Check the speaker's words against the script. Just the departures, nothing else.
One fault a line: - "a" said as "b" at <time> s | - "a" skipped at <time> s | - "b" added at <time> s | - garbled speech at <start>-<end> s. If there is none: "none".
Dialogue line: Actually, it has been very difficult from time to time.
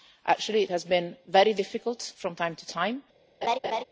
none